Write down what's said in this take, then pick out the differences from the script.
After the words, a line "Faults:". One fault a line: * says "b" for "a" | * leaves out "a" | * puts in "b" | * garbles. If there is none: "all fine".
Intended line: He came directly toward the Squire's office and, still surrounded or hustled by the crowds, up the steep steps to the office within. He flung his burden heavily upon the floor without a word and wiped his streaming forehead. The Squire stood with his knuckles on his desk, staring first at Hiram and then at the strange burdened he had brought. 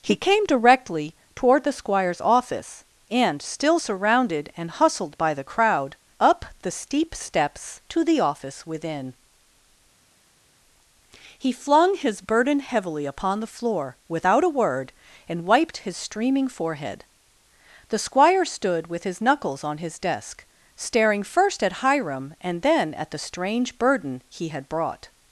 He came directly toward the Squire's office and, still surrounded and hustled by the crowd, up the steep steps to the office within. He flung his burden heavily upon the floor without a word and wiped his streaming forehead. The Squire stood with his knuckles on his desk, staring first at Hiram and then at the strange burden he had brought.
Faults:
* says "and" for "or"
* says "crowd" for "crowds"
* says "burden" for "burdened"